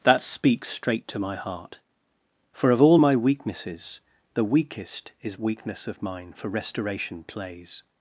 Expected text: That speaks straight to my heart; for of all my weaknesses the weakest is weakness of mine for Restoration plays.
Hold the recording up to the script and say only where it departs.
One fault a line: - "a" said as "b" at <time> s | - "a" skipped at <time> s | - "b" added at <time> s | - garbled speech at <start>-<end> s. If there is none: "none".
none